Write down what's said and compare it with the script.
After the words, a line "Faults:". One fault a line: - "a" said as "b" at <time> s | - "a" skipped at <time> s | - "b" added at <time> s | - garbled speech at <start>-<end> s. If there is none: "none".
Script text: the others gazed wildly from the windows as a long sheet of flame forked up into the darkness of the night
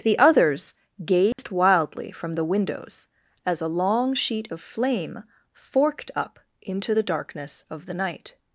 the others gazed wildly from the windows as a long sheet of flame forked up into the darkness of the night
Faults:
none